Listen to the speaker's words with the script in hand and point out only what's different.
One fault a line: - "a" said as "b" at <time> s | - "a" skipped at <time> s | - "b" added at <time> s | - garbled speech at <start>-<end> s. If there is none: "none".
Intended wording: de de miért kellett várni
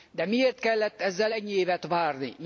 - "de" skipped at 0.2 s
- "ezzel ennyi évet" added at 1.0 s